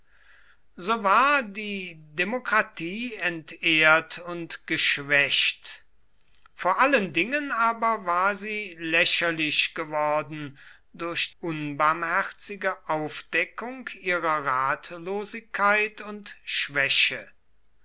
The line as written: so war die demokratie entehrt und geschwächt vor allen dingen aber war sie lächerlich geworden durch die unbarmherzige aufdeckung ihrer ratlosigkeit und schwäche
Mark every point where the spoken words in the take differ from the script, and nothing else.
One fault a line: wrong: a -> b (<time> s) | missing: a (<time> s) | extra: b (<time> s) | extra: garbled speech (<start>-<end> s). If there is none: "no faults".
missing: die (11.3 s)